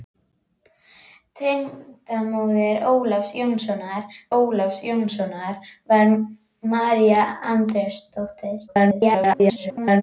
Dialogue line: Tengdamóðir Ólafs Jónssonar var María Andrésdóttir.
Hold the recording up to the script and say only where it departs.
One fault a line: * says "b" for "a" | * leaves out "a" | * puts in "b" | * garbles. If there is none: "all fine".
* puts in "Ólafs Jónssonar"
* garbles